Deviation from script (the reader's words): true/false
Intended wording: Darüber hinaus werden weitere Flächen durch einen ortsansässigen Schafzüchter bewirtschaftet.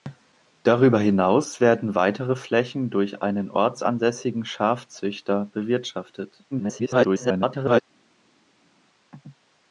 true